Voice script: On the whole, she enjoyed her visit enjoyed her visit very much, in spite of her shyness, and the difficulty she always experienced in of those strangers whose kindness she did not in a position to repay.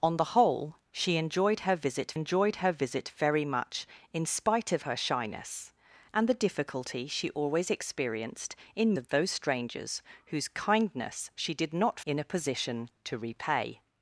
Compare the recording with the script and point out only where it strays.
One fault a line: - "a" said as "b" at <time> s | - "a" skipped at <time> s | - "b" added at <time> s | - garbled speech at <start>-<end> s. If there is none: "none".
none